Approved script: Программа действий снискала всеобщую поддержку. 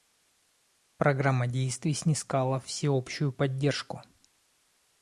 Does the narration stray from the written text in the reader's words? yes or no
no